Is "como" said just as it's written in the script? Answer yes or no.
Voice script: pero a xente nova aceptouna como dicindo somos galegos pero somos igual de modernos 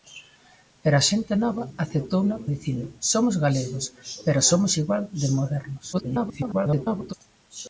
no